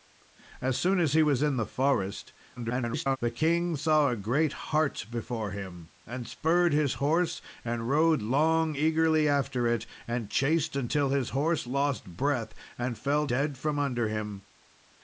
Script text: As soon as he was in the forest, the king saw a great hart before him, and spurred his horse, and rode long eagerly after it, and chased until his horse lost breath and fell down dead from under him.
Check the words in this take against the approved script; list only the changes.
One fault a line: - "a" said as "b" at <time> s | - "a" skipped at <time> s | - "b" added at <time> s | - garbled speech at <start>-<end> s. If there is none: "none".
- garbled speech at 2.6-3.2 s
- "down" skipped at 13.3 s